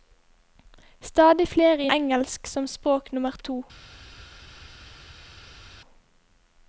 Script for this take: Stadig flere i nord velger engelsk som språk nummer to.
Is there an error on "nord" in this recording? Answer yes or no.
yes